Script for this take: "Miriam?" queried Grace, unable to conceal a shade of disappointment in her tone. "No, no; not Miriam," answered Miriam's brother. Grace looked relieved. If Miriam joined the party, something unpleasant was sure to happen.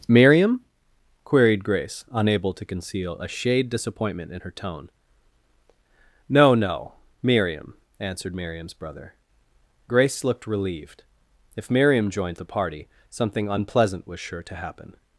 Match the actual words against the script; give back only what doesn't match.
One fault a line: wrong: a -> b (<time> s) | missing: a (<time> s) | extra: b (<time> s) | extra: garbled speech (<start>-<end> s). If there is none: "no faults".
missing: of (3.7 s)
missing: not (6.9 s)